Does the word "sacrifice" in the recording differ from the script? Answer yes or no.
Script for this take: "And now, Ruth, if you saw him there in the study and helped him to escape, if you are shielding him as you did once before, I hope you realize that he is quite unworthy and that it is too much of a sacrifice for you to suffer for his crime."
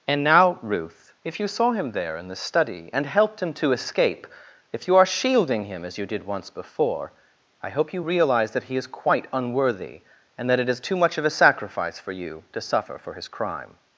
no